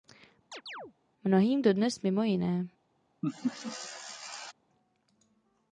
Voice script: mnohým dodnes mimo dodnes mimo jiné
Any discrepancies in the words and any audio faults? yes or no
yes